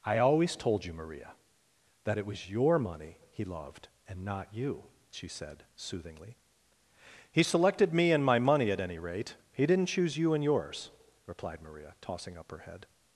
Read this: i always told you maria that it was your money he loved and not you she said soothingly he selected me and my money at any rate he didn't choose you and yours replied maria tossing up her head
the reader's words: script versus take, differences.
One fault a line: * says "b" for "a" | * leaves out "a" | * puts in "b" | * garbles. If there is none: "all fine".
all fine